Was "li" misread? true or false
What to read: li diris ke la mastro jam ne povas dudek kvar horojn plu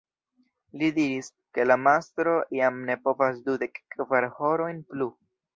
false